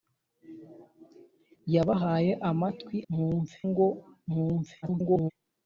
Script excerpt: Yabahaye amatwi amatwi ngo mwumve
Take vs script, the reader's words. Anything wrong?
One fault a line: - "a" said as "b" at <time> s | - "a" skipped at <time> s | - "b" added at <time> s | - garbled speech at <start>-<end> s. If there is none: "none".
- "amatwi" said as "mwumve" at 3.1 s
- garbled speech at 4.8-5.3 s